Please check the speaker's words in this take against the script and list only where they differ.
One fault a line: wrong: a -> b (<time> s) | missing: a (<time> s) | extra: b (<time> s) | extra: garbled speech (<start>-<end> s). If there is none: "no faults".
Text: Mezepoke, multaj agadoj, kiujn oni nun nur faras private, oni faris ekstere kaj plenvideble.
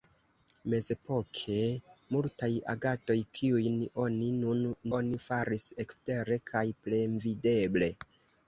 missing: nur faras private (4.6 s)